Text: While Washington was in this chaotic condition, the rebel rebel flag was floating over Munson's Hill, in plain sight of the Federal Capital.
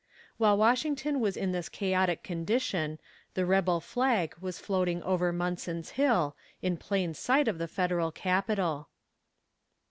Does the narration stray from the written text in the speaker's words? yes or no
yes